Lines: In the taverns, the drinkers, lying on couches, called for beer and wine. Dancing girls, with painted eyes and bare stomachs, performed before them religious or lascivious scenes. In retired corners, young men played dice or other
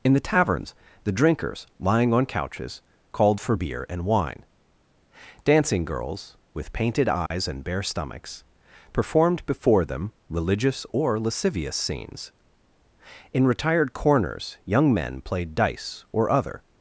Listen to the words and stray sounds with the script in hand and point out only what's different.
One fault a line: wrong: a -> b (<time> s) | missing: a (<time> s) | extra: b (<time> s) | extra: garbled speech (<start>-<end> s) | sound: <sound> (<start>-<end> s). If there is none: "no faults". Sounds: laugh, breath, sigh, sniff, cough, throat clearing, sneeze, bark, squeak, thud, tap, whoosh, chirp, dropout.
sound: dropout (7.3-7.3 s)